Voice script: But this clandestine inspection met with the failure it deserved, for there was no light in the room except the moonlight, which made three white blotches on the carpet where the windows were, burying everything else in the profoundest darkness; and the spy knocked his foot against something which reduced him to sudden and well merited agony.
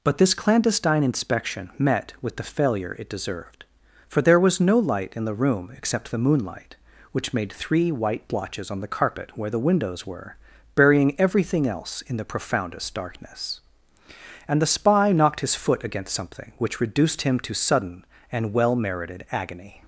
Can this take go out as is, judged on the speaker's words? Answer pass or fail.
pass